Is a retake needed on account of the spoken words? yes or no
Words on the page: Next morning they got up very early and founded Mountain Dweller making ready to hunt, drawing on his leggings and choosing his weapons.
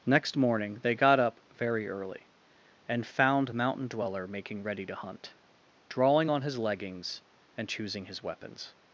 yes